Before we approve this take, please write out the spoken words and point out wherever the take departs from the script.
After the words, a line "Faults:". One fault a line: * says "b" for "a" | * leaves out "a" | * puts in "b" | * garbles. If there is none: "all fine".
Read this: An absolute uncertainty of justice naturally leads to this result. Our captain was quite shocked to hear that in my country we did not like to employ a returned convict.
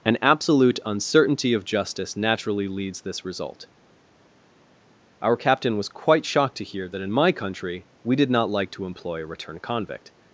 An absolute uncertainty of justice naturally leads this result. Our captain was quite shocked to hear that in my country we did not like to employ a returned convict.
Faults:
* leaves out "to"